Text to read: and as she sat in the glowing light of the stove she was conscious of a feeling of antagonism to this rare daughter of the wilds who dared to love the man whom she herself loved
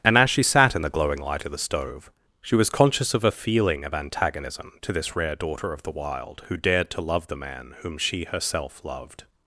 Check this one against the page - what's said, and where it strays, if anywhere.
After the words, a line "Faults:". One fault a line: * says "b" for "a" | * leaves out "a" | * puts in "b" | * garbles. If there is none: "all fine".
and as she sat in the glowing light of the stove she was conscious of a feeling of antagonism to this rare daughter of the wild who dared to love the man whom she herself loved
Faults:
* says "wild" for "wilds"